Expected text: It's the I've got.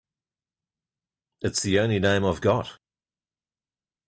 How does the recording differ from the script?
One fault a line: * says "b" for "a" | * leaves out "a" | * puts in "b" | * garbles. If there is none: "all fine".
* puts in "only name"